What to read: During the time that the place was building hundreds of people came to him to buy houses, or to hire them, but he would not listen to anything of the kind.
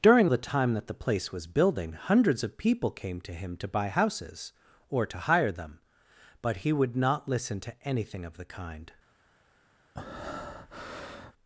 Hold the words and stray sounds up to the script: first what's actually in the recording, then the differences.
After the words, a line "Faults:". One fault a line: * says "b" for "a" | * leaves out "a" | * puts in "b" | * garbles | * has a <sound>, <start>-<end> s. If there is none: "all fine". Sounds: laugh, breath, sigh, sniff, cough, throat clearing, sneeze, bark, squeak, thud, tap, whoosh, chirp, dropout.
During the time that the place was building hundreds of people came to him to buy houses, or to hire them, but he would not listen to anything of the kind.
Faults:
* has a breath, 9.9-11.3 s